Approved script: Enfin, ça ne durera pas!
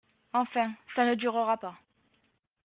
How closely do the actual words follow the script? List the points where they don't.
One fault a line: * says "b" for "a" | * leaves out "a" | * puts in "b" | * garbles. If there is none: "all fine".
all fine